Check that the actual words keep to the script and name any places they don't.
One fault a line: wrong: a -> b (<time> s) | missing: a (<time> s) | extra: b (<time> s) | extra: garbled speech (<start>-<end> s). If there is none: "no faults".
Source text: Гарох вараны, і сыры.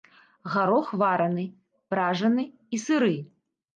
extra: пражаны (1.9 s)